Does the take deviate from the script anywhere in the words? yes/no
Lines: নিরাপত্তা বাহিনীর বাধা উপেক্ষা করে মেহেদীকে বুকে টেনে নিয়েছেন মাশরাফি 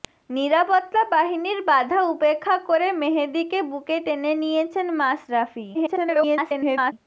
yes